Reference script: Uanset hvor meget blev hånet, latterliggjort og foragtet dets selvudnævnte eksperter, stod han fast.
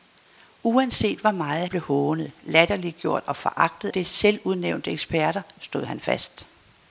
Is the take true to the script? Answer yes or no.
yes